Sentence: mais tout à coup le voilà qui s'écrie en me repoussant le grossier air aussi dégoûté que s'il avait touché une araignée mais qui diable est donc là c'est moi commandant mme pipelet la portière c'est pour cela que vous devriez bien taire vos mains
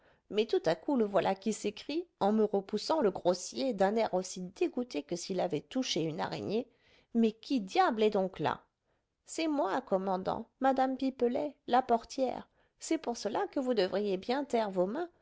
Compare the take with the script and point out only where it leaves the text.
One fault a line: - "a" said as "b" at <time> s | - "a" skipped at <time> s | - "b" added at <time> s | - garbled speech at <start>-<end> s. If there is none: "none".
- "d'un" added at 3.7 s